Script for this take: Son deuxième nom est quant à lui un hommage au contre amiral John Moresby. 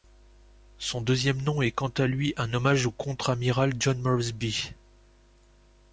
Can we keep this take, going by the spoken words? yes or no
yes